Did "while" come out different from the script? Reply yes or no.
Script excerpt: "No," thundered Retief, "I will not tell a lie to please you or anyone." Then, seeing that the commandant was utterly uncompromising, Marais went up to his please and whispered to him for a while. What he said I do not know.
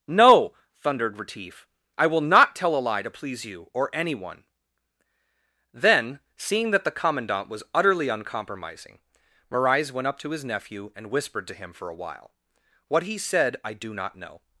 no